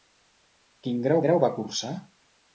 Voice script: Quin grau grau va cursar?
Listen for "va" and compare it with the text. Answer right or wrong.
right